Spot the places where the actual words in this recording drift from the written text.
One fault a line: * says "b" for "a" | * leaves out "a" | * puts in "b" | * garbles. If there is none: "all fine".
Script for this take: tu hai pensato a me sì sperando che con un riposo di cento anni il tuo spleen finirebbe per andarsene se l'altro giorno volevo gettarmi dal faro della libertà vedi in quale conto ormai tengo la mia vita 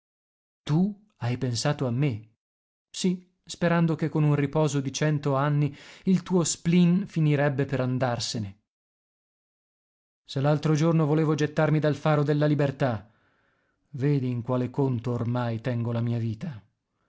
all fine